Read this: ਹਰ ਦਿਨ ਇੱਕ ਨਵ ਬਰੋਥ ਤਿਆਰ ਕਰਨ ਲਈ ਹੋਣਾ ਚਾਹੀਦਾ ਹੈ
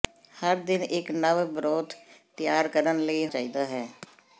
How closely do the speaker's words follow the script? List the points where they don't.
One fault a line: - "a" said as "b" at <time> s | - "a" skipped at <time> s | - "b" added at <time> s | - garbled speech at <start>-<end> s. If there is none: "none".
- "ਹੋਣਾ" skipped at 3.3 s